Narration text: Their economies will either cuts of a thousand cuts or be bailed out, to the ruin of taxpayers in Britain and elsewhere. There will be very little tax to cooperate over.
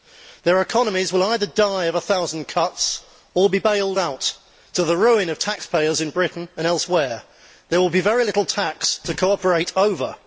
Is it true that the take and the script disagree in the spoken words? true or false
true